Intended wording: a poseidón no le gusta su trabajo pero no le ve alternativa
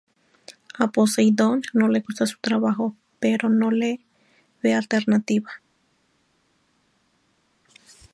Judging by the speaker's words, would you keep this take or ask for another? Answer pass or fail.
pass